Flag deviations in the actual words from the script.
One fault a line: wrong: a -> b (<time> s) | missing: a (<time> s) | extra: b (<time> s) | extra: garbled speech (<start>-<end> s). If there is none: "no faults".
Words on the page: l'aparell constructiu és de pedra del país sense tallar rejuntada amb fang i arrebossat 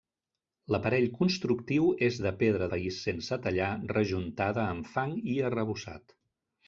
missing: del (2.7 s)